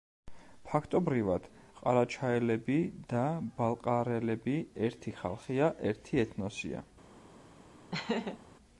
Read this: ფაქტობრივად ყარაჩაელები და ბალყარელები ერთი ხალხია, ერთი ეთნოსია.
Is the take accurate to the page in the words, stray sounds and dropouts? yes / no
no